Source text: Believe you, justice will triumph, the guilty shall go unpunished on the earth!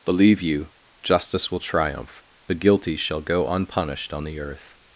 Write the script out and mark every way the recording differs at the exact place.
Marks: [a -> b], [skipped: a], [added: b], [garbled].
Believe you, justice will triumph, the guilty shall go unpunished on the earth!